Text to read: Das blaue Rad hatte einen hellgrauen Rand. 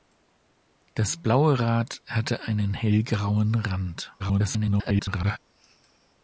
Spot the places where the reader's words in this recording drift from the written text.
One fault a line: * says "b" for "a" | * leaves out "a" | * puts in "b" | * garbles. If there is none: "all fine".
* garbles